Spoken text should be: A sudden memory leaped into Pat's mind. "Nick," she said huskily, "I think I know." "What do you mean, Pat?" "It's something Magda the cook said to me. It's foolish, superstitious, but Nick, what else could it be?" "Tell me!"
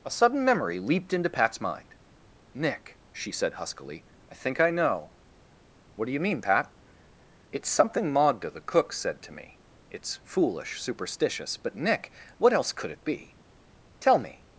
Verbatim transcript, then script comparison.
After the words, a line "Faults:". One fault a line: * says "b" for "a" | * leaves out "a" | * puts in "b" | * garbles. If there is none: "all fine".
A sudden memory leaped into Pat's mind. "Nick," she said huskily, "I think I know." "What do you mean, Pat?" "It's something Magda the cook said to me. It's foolish, superstitious, but Nick, what else could it be?" "Tell me!"
Faults:
all fine